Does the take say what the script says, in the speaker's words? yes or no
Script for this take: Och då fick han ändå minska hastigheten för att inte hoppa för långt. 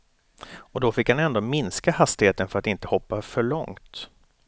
yes